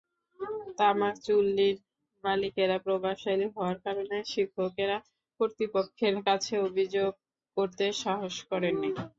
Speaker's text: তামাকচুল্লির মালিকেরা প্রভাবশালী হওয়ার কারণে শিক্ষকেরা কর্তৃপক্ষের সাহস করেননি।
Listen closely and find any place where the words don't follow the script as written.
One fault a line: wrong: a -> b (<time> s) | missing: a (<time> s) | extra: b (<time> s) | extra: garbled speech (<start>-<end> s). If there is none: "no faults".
extra: কাছে অভিযোগ করতে (6.3 s)